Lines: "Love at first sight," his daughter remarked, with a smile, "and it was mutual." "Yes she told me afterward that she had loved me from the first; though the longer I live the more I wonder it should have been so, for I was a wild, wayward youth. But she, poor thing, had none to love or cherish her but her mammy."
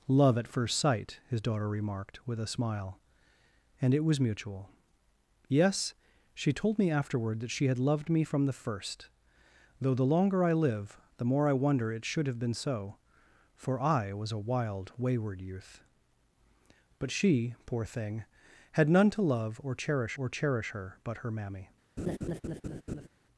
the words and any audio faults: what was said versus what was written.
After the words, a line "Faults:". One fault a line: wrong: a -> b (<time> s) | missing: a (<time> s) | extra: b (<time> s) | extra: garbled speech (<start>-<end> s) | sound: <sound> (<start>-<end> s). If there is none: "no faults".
"Love at first sight," his daughter remarked, with a smile, "and it was mutual." "Yes she told me afterward that she had loved me from the first; though the longer I live the more I wonder it should have been so, for I was a wild, wayward youth. But she, poor thing, had none to love or cherish or cherish her but her mammy."
Faults:
extra: or cherish (20.2 s)
sound: laugh (22.0-23.1 s)